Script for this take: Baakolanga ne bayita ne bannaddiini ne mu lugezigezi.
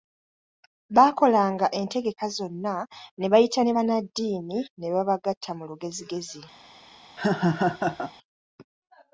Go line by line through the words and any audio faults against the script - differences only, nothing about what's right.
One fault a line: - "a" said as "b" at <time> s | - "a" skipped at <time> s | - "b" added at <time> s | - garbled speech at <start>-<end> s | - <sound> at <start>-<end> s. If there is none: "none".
- "entegeka zonna" added at 1.8 s
- "babagatta" added at 4.9 s
- laugh at 7.2-8.1 s